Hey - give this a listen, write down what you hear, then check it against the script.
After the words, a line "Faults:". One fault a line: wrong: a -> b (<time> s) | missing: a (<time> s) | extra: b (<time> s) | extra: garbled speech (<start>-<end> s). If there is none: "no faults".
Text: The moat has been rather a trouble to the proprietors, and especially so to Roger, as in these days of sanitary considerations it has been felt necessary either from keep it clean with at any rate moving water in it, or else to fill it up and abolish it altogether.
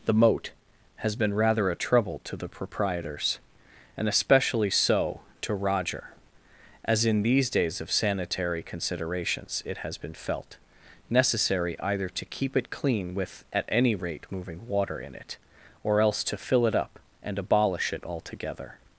The moat has been rather a trouble to the proprietors, and especially so to Roger, as in these days of sanitary considerations it has been felt necessary either to keep it clean with at any rate moving water in it, or else to fill it up and abolish it altogether.
Faults:
wrong: from -> to (12.1 s)